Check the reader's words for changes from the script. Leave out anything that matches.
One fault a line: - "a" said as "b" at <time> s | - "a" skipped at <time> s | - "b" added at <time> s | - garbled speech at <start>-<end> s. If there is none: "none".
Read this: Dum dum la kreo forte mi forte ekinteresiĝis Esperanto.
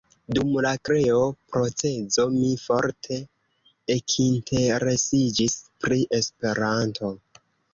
- "dum" skipped at 0.5 s
- "forte" said as "procezo" at 1.6 s
- "pri" added at 5.8 s